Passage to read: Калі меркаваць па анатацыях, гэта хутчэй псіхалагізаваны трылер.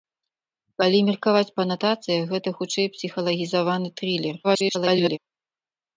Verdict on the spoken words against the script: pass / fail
fail